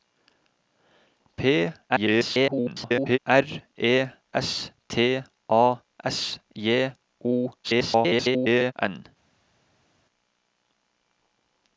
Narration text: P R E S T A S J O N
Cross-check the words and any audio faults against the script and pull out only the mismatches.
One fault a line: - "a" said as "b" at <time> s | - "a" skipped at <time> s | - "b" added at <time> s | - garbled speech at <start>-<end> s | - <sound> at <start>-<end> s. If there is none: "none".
- garbled speech at 1.9-3.2 s
- garbled speech at 7.6-8.7 s